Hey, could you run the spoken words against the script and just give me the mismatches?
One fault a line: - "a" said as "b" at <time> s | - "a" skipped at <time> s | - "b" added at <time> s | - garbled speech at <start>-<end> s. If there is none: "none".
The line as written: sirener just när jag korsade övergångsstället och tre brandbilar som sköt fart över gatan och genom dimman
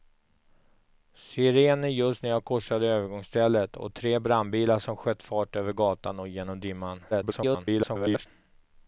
- garbled speech at 7.1-8.3 s